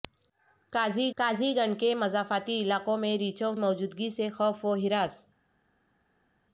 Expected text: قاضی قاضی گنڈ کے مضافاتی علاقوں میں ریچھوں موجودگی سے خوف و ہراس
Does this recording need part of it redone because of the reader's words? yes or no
no